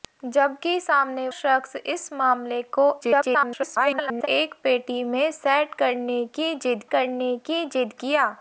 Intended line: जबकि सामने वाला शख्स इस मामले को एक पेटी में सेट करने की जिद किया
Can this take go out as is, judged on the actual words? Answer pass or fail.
fail